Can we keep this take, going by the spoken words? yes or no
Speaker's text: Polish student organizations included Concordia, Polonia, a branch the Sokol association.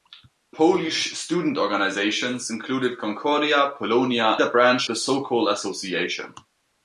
yes